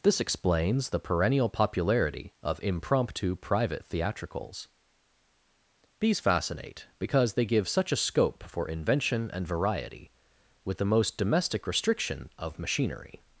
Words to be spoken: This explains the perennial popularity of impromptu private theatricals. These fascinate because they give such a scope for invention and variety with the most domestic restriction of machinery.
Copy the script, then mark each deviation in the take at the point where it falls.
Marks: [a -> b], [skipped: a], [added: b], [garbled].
This explains the perennial popularity of impromptu private theatricals. These fascinate because they give such a scope for invention and variety with the most domestic restriction of machinery.